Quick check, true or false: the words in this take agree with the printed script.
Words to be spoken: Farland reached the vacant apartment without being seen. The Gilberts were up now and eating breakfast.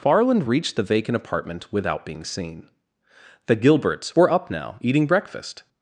false